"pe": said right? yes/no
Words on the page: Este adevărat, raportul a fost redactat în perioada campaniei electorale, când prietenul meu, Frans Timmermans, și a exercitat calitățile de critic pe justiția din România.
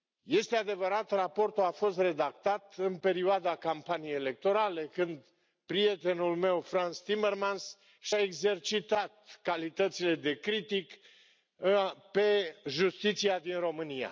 yes